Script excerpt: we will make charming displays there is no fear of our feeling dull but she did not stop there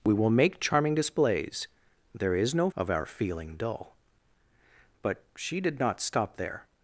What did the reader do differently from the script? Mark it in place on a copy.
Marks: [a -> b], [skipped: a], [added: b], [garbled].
we will make charming displays there is no [skipped: fear] of our feeling dull but she did not stop there